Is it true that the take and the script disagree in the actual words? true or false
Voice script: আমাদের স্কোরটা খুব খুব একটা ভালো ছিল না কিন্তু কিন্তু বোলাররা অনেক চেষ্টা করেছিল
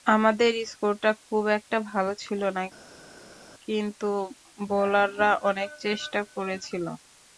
true